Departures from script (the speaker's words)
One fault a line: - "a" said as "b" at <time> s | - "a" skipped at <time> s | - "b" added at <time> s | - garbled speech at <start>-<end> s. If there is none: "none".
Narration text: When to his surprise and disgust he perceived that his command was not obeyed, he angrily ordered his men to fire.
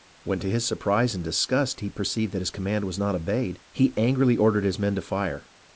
none